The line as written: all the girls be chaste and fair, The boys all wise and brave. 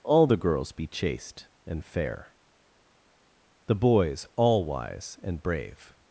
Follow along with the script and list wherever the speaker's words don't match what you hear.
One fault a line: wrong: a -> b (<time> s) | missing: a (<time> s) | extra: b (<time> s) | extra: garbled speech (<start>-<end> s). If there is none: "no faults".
no faults